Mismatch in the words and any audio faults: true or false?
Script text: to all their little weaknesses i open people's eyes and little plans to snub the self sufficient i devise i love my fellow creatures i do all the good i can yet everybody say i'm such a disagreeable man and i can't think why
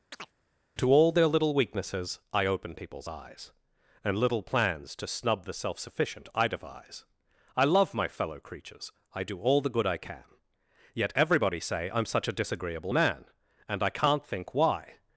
true